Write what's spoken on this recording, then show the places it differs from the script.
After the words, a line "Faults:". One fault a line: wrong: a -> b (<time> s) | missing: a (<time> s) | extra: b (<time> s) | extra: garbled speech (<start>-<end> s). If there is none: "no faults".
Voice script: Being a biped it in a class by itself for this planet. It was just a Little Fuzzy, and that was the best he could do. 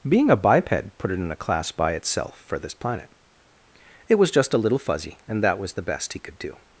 Being a biped put it in a class by itself for this planet. It was just a Little Fuzzy, and that was the best he could do.
Faults:
extra: put (1.0 s)